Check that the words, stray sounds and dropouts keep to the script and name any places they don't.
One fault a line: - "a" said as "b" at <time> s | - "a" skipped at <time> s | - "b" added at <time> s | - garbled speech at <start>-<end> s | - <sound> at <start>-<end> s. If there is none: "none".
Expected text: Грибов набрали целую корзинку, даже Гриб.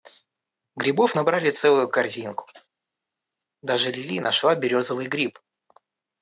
- "Лили нашла березовый" added at 3.9 s